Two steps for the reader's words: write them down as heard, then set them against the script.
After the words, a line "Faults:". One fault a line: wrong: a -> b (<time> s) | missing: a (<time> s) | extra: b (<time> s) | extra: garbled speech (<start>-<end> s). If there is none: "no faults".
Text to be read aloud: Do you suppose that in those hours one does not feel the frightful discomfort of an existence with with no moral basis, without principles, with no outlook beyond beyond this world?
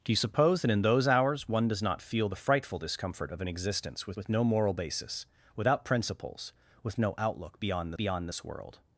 Do you suppose that in those hours one does not feel the frightful discomfort of an existence with with no moral basis, without principles, with no outlook beyond beyond this world?
Faults:
no faults